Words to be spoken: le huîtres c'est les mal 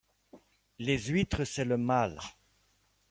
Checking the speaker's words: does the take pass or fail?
fail